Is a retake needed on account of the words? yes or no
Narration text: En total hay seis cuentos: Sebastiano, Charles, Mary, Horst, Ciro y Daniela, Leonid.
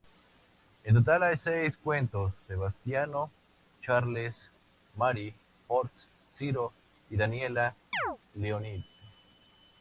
no